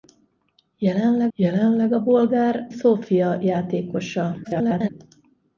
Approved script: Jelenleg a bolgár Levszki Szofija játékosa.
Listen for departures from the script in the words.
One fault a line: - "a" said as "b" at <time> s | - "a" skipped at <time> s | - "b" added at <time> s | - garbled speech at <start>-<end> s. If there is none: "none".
- "jelenleg" added at 1.3 s
- "Levszki" skipped at 2.7 s
- garbled speech at 4.4-4.9 s